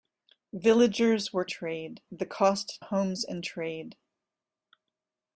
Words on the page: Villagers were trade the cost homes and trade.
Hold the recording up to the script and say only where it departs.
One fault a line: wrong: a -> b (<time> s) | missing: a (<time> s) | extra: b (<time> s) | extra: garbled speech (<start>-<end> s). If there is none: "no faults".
no faults